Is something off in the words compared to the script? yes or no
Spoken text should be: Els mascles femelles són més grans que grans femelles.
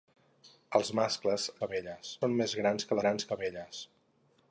no